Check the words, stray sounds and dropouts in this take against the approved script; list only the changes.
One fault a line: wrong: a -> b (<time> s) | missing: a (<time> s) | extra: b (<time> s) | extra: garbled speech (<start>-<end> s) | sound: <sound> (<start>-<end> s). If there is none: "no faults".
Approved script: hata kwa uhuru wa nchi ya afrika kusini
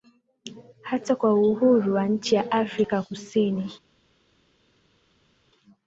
no faults